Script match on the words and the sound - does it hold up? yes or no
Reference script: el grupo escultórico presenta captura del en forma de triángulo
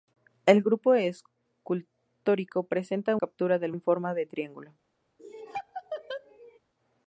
no